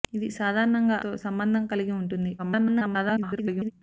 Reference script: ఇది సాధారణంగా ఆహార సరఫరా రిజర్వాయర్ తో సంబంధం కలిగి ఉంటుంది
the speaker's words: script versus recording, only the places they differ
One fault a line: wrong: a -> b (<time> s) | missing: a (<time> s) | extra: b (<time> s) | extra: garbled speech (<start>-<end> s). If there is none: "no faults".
missing: ఆహార సరఫరా రిజర్వాయర్ (1.0 s)
extra: garbled speech (2.4-3.7 s)